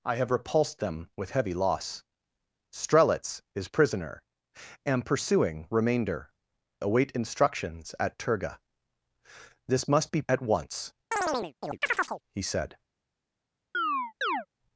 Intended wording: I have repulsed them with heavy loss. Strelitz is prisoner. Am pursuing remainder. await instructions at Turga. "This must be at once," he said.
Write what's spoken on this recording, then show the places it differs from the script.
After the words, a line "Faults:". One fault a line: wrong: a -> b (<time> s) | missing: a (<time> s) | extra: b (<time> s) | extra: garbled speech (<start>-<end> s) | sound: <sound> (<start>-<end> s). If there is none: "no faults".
I have repulsed them with heavy loss. Strelitz is prisoner. Am pursuing remainder. await instructions at Turga. "This must be at once," he said.
Faults:
sound: chirp (11.1-12.2 s)
sound: chirp (13.7-14.5 s)